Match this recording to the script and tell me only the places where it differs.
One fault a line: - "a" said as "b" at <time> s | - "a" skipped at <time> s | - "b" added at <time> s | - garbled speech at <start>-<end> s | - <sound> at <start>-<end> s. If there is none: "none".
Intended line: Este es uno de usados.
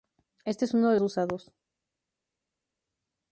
none